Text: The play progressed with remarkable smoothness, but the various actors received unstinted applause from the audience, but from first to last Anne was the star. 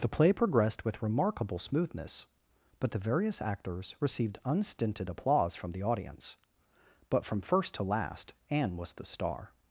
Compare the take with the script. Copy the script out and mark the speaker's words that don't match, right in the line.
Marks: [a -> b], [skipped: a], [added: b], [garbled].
The play progressed with remarkable smoothness, but the various actors received unstinted applause from the audience, but from first to last Anne was the star.